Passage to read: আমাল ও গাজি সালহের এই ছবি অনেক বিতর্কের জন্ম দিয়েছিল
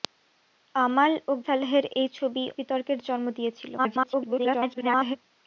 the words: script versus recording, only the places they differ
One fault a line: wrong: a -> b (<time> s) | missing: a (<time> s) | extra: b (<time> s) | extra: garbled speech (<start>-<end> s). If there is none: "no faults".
missing: গাজি (1.4 s)
missing: অনেক (2.4 s)
extra: garbled speech (3.8-5.2 s)